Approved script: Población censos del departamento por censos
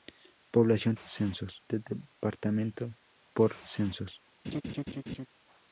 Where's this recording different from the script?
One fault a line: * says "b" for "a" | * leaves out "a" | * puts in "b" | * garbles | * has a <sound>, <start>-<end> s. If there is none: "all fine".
* has a laugh, 4.4-5.3 s